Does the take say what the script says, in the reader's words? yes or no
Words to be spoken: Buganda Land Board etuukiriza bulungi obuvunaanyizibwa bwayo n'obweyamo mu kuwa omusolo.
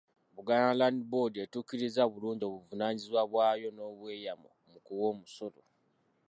yes